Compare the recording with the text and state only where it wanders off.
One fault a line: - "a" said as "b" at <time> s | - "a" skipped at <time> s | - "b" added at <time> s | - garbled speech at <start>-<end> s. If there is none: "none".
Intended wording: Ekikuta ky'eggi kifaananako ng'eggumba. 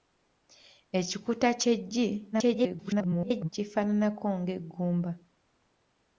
- garbled speech at 2.3-3.5 s